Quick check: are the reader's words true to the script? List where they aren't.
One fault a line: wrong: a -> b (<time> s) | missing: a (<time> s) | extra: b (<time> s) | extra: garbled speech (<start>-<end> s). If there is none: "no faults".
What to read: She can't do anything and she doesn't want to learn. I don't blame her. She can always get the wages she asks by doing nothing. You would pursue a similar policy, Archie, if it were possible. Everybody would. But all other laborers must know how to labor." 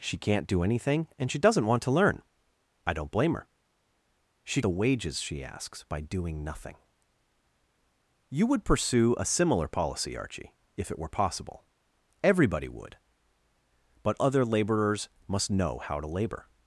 missing: can always get (4.6 s)
missing: all (14.2 s)